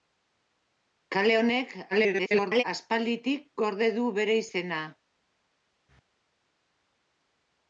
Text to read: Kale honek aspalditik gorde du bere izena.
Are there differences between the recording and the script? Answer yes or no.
yes